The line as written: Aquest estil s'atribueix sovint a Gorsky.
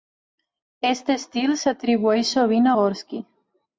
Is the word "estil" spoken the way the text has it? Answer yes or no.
yes